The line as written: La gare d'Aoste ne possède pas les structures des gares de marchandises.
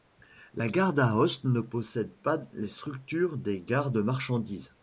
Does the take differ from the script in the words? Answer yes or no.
no